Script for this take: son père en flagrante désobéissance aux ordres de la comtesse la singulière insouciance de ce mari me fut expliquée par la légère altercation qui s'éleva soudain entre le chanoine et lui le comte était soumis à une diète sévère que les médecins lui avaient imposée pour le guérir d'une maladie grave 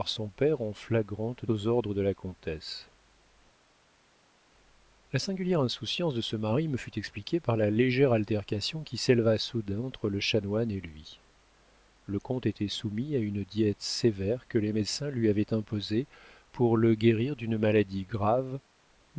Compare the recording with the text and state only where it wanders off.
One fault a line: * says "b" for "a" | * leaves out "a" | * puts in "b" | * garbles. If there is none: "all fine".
* leaves out "désobéissance"